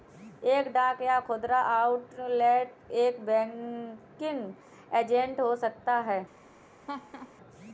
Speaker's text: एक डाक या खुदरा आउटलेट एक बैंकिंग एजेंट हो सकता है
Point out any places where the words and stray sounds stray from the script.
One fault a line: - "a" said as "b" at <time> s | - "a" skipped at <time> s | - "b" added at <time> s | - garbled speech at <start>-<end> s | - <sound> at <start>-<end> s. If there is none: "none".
- laugh at 6.9-7.3 s